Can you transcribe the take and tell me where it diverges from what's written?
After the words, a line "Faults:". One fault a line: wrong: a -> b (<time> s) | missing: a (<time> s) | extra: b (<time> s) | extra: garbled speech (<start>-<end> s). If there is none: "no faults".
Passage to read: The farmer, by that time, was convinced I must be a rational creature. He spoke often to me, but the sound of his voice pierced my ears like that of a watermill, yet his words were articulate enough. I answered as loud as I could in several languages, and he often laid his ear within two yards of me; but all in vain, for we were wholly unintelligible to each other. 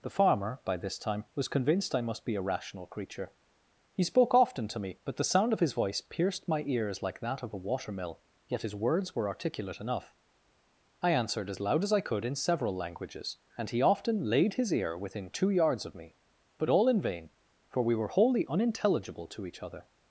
The farmer, by this time, was convinced I must be a rational creature. He spoke often to me, but the sound of his voice pierced my ears like that of a watermill, yet his words were articulate enough. I answered as loud as I could in several languages, and he often laid his ear within two yards of me; but all in vain, for we were wholly unintelligible to each other.
Faults:
wrong: that -> this (0.8 s)